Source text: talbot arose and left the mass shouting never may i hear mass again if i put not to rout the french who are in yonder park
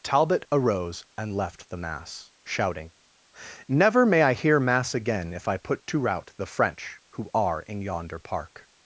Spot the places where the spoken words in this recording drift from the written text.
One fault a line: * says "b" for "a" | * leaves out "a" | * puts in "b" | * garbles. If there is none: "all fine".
* leaves out "not"